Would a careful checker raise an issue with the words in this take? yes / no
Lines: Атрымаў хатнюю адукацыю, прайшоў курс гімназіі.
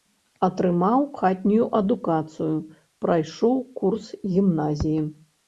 no